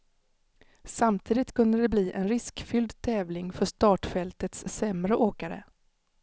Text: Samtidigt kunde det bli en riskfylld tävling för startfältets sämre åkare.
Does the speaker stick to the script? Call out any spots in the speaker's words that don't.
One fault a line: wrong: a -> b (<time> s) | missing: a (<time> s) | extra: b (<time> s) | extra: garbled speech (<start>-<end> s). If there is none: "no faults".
no faults